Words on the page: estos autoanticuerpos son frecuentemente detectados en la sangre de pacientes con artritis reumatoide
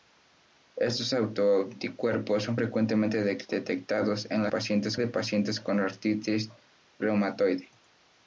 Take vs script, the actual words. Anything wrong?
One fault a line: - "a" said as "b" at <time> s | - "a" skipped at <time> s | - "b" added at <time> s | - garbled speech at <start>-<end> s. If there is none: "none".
- "sangre" said as "pacientes" at 4.5 s